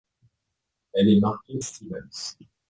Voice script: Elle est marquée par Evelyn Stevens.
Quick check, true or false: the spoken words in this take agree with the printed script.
false